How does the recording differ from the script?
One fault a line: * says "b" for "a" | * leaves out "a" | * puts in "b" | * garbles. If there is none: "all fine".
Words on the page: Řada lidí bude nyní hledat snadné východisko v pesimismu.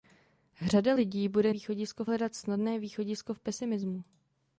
* says "východisko" for "nyní"